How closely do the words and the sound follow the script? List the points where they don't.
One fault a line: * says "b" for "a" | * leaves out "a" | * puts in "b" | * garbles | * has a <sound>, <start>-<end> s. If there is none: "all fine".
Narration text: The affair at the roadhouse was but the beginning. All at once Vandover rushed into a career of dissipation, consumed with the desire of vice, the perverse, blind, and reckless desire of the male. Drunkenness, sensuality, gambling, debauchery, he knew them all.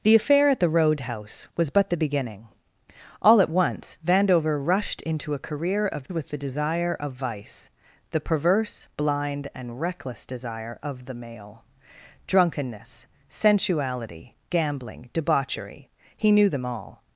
* leaves out "dissipation consumed"